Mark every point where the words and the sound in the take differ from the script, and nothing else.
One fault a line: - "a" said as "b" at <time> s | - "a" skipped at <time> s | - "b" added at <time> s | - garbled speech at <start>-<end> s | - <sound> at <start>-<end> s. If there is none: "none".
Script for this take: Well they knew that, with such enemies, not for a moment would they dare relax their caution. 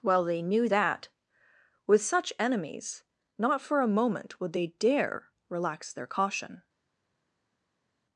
none